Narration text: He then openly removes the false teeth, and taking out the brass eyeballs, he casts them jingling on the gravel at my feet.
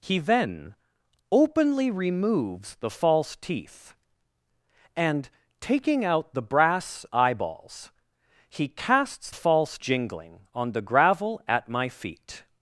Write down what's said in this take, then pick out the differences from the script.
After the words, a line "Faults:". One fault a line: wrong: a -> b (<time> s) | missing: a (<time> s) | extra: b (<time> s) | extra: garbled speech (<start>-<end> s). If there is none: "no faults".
He then openly removes the false teeth, and taking out the brass eyeballs, he casts false jingling on the gravel at my feet.
Faults:
wrong: them -> false (9.3 s)